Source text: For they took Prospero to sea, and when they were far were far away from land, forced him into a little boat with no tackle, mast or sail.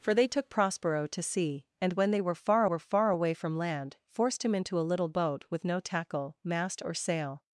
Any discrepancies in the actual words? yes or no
no